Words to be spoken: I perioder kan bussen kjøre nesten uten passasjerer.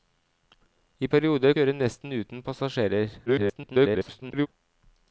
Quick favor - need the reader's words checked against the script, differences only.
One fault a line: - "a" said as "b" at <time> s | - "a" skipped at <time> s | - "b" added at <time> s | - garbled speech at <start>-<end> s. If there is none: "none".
- "kan bussen" skipped at 1.5 s
- garbled speech at 3.3-4.5 s